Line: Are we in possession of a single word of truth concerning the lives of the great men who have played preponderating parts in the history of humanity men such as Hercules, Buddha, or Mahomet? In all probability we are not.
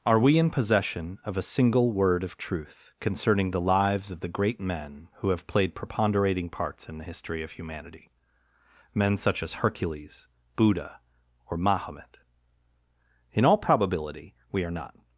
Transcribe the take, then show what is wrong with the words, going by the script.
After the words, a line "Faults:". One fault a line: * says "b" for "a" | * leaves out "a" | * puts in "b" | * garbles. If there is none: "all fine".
Are we in possession of a single word of truth concerning the lives of the great men who have played preponderating parts in the history of humanity men such as Hercules, Buddha, or Mahomet? In all probability we are not.
Faults:
all fine